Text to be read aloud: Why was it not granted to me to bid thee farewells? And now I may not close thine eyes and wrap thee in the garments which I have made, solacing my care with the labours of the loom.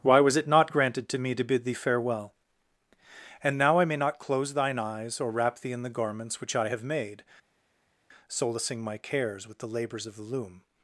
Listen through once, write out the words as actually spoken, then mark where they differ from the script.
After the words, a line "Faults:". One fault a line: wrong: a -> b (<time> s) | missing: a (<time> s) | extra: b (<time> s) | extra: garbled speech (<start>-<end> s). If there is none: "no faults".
Why was it not granted to me to bid thee farewell? And now I may not close thine eyes or wrap thee in the garments which I have made, solacing my cares with the labours of the loom.
Faults:
wrong: farewells -> farewell (1.7 s)
wrong: and -> or (5.2 s)
wrong: care -> cares (9.0 s)